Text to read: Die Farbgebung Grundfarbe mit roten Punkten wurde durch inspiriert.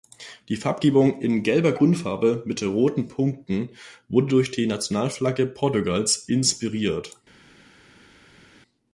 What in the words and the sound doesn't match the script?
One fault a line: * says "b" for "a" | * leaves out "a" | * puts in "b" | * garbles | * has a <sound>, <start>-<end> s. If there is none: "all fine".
* puts in "in gelber"
* puts in "die Nationalflagge Portugals"